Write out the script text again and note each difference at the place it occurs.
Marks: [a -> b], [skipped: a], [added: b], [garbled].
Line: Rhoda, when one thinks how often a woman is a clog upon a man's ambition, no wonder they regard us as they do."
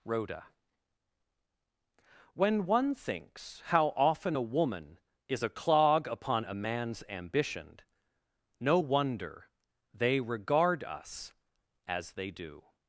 Rhoda, when one thinks how often a woman is a clog upon a man's ambition, no wonder they regard us as they do."